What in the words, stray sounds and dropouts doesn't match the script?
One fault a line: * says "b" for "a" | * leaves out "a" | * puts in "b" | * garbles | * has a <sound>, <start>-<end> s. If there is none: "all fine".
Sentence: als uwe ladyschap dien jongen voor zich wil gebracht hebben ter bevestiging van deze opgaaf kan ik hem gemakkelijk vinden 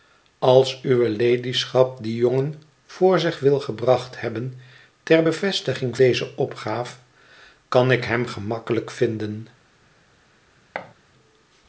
* leaves out "van"
* has a thud, 10.7-10.9 s